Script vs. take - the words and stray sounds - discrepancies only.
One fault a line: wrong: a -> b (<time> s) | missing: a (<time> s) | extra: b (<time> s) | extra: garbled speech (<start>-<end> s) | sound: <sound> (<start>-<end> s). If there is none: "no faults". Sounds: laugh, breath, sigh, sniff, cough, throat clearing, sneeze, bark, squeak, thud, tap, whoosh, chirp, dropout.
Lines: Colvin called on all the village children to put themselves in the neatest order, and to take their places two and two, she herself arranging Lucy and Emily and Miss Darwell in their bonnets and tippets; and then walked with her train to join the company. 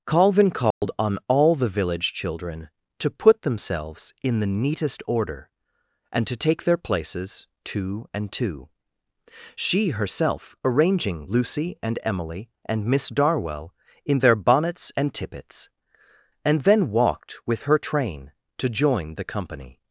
sound: dropout (0.7-0.8 s)